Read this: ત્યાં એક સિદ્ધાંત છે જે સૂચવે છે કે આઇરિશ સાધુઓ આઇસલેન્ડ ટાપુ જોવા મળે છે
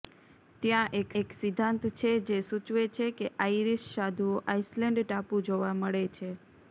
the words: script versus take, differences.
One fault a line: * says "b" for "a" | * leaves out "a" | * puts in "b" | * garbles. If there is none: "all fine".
* puts in "એક"